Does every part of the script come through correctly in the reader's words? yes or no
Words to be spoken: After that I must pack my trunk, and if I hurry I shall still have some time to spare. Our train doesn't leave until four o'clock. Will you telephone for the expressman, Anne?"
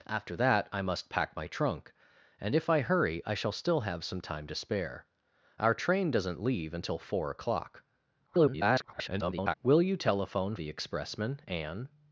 no